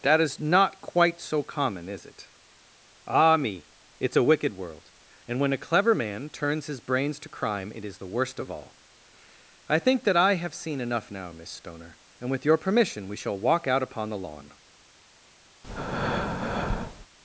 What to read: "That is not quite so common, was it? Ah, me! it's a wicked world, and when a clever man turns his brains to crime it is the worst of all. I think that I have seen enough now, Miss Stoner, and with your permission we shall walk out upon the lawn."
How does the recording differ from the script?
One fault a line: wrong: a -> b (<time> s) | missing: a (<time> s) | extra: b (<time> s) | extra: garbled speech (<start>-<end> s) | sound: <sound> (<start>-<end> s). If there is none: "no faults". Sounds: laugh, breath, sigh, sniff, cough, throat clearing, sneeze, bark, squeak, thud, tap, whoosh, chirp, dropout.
wrong: was -> is (1.9 s)
sound: breath (15.6-17.1 s)